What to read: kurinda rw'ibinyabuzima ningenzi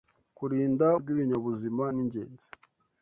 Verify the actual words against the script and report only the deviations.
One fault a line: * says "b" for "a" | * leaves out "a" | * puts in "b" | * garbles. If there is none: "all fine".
all fine